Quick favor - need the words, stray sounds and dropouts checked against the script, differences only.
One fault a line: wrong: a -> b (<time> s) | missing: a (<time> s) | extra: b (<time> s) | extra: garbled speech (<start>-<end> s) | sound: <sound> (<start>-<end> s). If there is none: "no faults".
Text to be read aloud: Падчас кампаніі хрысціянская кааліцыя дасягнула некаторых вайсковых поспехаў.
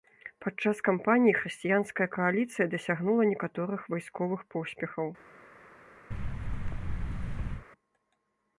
sound: thud (6.1-7.7 s)